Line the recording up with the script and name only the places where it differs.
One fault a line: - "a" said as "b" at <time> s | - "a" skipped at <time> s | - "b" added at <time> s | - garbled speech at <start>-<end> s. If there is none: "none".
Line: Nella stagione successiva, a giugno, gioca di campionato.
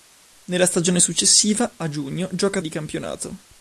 none